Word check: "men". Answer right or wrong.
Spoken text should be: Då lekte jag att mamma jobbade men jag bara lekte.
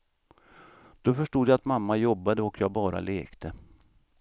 wrong